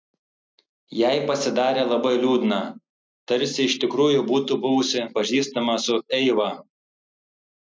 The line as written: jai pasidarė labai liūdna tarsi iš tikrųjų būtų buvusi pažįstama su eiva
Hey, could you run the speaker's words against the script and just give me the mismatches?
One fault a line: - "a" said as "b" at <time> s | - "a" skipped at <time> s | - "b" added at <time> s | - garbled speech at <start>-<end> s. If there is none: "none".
none